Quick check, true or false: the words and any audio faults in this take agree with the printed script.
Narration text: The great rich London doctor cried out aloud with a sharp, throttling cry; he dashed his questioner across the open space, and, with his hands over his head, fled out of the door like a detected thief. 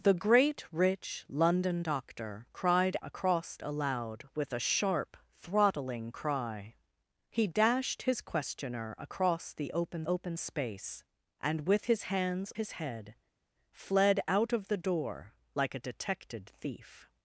false